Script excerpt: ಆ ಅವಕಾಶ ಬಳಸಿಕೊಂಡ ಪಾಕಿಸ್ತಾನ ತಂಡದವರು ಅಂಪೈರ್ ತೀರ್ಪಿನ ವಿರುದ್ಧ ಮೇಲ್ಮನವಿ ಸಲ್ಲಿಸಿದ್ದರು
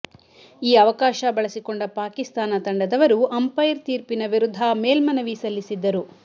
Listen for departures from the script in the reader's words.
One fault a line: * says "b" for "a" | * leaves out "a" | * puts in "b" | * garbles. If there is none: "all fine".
* says "ಈ" for "ಆ"